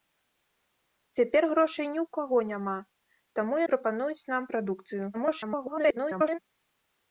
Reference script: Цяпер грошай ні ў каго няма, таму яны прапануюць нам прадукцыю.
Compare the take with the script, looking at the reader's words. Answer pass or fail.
fail